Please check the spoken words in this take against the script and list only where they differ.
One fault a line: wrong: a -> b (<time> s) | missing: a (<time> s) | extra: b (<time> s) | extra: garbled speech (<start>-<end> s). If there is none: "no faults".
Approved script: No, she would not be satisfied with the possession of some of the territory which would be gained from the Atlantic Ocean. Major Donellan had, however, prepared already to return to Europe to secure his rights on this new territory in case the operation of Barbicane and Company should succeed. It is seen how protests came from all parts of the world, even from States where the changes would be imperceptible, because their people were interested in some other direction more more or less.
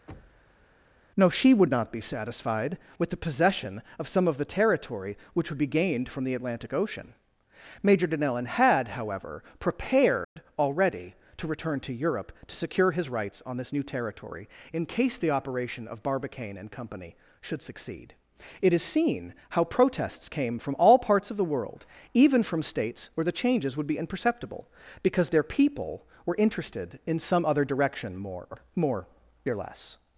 no faults